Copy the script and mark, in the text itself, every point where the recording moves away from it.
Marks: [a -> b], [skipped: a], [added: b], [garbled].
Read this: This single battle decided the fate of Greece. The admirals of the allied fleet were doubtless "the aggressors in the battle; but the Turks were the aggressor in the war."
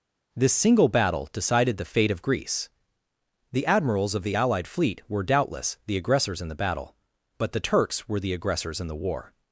This single battle decided the fate of Greece. The admirals of the allied fleet were doubtless "the aggressors in the battle; but the Turks were the [aggressor -> aggressors] in the war."